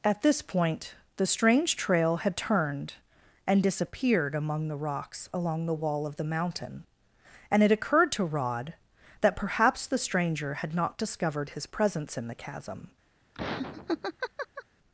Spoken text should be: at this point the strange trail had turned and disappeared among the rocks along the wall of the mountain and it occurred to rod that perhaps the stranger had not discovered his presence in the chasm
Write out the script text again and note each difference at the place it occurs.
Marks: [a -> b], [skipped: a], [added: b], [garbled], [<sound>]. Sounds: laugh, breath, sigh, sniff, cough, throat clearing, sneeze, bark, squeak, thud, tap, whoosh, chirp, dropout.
at this point the strange trail had turned and disappeared among the rocks along the wall of the mountain and it occurred to rod that perhaps the stranger had not discovered his presence in the chasm [laugh]